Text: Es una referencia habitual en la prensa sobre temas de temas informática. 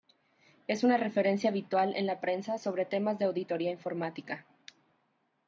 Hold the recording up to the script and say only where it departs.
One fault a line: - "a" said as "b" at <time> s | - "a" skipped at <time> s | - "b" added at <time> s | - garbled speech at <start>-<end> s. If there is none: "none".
- "temas" said as "auditoría" at 3.2 s